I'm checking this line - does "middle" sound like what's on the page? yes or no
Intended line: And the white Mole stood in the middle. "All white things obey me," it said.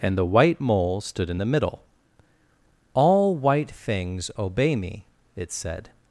yes